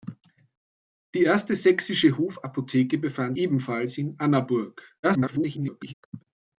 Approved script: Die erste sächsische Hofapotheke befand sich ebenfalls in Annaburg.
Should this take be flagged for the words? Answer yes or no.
yes